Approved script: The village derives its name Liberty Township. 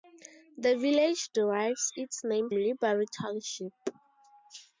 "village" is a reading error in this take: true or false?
false